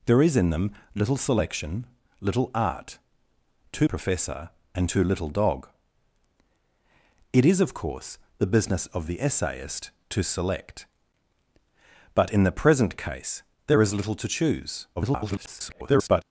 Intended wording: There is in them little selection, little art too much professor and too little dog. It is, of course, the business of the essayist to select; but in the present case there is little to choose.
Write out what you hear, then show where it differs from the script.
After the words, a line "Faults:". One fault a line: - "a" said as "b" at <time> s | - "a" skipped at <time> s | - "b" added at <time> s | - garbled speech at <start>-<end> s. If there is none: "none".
There is in them little selection, little art too professor and too little dog. It is, of course, the business of the essayist to select; but in the present case there is little to choose. [garbled]
Faults:
- "much" skipped at 3.9 s
- garbled speech at 15.0-16.2 s